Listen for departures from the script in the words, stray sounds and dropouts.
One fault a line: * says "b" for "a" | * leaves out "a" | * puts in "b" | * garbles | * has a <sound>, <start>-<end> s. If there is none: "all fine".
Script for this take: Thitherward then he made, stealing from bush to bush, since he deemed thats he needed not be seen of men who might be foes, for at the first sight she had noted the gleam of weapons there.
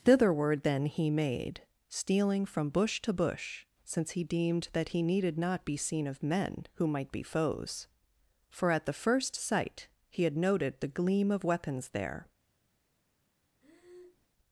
* says "that" for "thats"
* says "he" for "she"
* has a breath, 13.6-14.3 s